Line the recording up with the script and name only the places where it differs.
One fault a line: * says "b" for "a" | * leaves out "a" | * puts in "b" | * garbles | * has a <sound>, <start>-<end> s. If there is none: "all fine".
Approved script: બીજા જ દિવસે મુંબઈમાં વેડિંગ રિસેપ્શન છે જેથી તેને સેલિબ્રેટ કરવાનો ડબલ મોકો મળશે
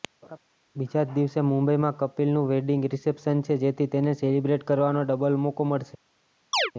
* has a laugh, 0.2-0.4 s
* puts in "કપિલનું"
* has a chirp, 6.5-6.7 s